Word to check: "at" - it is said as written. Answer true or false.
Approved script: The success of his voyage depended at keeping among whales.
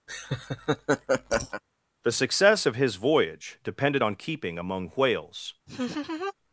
false